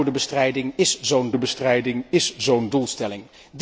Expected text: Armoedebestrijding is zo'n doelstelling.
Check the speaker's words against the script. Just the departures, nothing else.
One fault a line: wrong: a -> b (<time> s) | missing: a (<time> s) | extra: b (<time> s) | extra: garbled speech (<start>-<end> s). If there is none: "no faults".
extra: armoedebestrijding is zo'n (1.3 s)